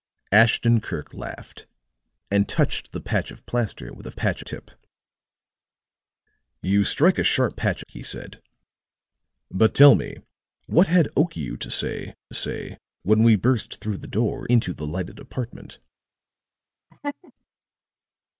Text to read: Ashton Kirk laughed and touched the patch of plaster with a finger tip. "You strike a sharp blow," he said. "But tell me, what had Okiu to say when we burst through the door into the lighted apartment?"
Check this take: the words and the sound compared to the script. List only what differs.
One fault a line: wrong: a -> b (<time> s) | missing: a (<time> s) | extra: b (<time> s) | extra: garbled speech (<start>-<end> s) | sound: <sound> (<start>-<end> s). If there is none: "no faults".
wrong: finger -> patch (4.1 s)
wrong: blow -> patch (7.5 s)
extra: say (12.3 s)
sound: laugh (16.9-17.3 s)